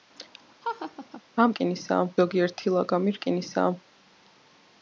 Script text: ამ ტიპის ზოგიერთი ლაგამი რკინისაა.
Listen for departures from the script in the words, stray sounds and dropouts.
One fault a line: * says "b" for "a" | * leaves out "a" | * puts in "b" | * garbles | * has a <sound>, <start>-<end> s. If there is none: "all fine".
* has a laugh, 0.6-1.2 s
* says "რკინისაა" for "ტიპის"